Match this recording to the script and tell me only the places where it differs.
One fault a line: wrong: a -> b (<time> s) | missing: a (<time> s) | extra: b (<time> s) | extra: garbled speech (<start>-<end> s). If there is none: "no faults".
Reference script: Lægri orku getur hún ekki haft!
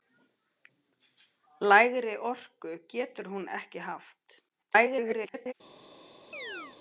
extra: garbled speech (4.5-5.5 s)